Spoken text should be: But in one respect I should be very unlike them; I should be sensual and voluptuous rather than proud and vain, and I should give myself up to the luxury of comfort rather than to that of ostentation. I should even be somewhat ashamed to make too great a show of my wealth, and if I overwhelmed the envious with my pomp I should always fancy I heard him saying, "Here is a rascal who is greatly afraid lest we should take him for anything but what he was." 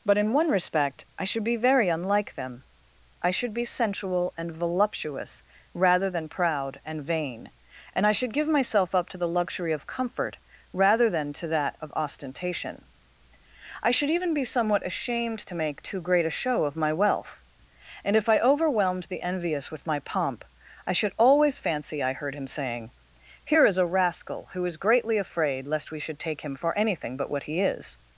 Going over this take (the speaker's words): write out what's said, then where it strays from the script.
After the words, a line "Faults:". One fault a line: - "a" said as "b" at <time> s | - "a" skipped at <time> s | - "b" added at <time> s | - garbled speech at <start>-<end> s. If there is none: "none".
But in one respect I should be very unlike them; I should be sensual and voluptuous rather than proud and vain, and I should give myself up to the luxury of comfort rather than to that of ostentation. I should even be somewhat ashamed to make too great a show of my wealth, and if I overwhelmed the envious with my pomp I should always fancy I heard him saying, "Here is a rascal who is greatly afraid lest we should take him for anything but what he is."
Faults:
- "was" said as "is" at 27.6 s